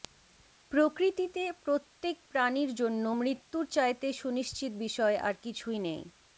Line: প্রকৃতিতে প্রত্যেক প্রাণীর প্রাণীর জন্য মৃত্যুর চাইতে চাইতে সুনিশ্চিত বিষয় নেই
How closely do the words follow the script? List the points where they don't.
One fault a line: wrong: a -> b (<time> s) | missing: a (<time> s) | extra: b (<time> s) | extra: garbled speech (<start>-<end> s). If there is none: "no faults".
missing: প্রাণীর (2.7 s)
missing: চাইতে (4.1 s)
extra: আর কিছুই (5.2 s)